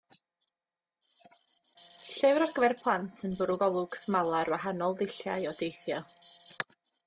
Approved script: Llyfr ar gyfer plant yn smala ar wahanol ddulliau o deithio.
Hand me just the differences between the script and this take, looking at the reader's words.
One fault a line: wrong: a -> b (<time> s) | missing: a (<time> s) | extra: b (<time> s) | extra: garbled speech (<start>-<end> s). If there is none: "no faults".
extra: bwrw golwg (3.4 s)